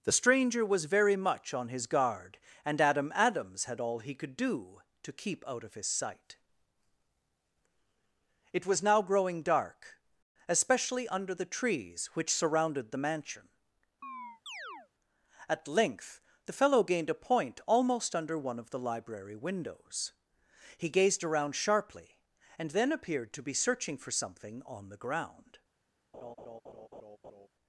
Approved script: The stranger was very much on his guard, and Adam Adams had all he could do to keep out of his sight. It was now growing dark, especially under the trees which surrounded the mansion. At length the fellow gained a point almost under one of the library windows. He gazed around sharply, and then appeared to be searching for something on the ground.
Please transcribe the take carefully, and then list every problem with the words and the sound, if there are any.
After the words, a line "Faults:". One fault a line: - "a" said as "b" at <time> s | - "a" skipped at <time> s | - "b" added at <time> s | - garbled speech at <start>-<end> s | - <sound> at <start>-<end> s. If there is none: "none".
The stranger was very much on his guard, and Adam Adams had all he could do to keep out of his sight. It was now growing dark, especially under the trees which surrounded the mansion. At length the fellow gained a point almost under one of the library windows. He gazed around sharply, and then appeared to be searching for something on the ground.
Faults:
- chirp at 14.0-14.9 s
- laugh at 26.1-27.5 s